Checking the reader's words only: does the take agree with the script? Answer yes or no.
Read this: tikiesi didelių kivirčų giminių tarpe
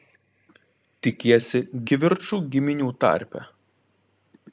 no